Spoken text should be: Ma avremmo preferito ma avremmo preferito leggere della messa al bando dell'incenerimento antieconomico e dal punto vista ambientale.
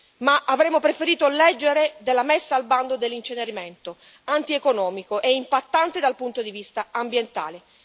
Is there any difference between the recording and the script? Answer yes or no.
yes